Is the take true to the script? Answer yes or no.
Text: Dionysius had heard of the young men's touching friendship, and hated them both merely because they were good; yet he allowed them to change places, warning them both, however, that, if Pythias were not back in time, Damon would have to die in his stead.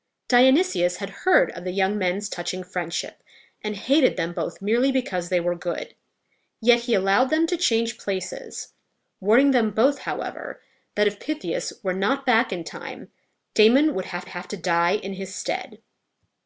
no